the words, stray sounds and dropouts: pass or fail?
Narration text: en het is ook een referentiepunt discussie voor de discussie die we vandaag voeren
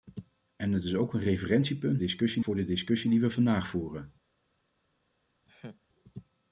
fail